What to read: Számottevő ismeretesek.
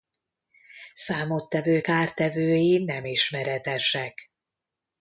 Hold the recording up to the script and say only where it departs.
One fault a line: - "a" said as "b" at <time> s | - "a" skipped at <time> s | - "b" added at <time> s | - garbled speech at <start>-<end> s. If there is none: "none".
- "kártevői nem" added at 1.8 s